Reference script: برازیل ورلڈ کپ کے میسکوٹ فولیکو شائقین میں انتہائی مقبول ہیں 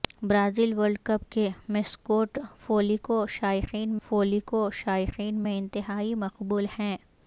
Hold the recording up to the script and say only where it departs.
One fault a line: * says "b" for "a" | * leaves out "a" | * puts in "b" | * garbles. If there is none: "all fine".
* puts in "فولیکو شائقین"